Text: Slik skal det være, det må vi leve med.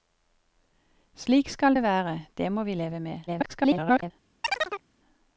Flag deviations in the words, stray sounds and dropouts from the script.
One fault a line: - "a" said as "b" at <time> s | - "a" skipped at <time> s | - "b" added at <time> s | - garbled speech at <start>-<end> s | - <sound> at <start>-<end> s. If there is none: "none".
- garbled speech at 3.3-4.1 s
- chirp at 4.4-4.8 s